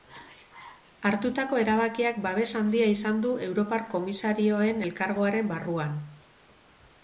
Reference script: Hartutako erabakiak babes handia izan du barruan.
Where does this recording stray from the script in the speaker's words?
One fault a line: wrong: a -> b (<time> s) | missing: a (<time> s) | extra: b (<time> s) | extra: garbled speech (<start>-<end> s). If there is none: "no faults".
extra: europar komisarioen elkargoaren (3.5 s)